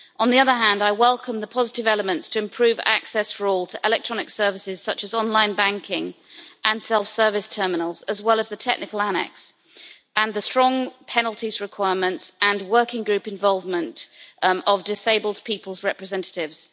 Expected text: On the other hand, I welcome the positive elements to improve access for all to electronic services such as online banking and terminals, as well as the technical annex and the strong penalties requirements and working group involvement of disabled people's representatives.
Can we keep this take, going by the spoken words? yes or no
no